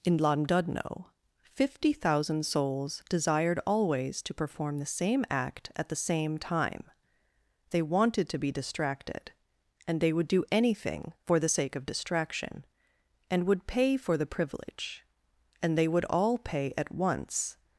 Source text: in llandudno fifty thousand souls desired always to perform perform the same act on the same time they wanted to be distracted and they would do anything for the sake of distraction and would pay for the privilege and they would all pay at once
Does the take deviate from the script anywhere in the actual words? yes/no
yes